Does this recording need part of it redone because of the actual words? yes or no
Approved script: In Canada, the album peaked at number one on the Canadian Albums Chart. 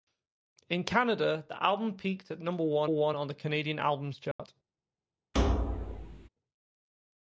yes